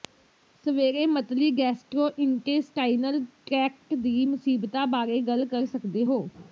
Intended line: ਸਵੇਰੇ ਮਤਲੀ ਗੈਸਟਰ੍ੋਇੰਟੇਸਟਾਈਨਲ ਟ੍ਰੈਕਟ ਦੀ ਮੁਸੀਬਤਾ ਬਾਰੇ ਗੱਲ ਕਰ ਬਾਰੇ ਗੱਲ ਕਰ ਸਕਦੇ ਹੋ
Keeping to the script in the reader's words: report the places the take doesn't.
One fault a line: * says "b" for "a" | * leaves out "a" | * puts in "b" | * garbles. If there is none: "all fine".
* leaves out "ਬਾਰੇ ਗੱਲ ਕਰ"